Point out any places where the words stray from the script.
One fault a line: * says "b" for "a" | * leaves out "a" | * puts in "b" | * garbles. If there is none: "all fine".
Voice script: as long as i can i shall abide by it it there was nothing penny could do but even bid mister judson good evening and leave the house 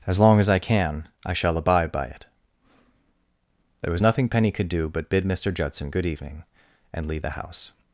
* leaves out "it"
* leaves out "even"